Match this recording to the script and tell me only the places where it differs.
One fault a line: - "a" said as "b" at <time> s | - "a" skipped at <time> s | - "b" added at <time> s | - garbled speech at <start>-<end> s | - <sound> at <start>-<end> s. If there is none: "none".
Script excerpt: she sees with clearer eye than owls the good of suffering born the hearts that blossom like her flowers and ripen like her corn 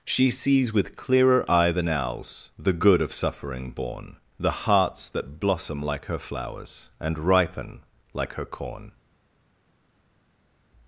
none